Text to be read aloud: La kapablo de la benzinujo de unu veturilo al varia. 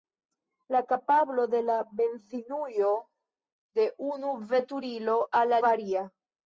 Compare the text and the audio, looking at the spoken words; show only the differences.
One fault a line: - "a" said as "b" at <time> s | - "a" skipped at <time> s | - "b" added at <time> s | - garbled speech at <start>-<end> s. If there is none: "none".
none